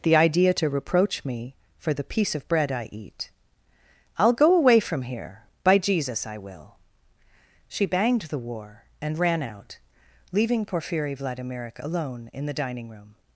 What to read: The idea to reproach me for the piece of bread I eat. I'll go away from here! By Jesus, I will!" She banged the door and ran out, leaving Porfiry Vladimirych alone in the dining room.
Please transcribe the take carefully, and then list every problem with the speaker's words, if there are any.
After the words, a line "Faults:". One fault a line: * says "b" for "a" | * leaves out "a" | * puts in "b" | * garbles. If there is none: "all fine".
The idea to reproach me for the piece of bread I eat. I'll go away from here! By Jesus, I will!" She banged the war and ran out, leaving Porfiry Vladimirych alone in the dining room.
Faults:
* says "war" for "door"